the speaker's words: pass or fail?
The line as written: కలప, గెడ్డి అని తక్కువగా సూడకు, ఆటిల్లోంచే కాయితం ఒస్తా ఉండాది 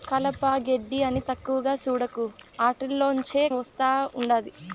fail